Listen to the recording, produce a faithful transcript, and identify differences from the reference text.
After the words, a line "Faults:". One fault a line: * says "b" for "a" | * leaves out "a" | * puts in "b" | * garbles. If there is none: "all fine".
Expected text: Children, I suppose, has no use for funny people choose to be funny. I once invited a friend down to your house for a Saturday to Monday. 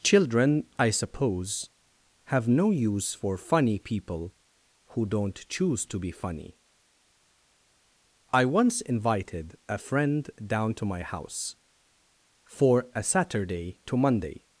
Children, I suppose, have no use for funny people who don't choose to be funny. I once invited a friend down to my house for a Saturday to Monday.
Faults:
* says "have" for "has"
* puts in "who don't"
* says "my" for "your"